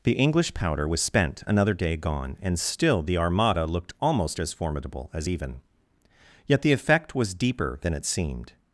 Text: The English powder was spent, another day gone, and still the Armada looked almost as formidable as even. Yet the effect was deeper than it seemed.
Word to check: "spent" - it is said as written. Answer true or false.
true